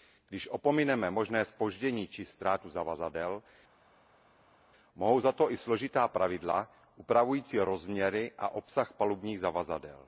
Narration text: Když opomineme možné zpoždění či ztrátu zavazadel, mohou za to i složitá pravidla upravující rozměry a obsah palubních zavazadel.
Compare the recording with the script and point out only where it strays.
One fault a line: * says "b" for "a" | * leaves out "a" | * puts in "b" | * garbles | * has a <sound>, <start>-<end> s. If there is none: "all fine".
all fine